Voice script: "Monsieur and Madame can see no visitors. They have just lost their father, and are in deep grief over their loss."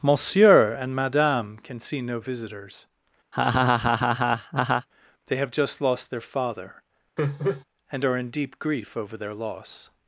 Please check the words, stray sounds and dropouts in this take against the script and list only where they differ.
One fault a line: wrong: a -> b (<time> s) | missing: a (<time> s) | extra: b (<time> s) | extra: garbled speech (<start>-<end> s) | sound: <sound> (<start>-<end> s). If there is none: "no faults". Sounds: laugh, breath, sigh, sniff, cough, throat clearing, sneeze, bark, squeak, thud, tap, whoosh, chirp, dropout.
sound: laugh (3.3-4.9 s)
sound: laugh (7.2-7.6 s)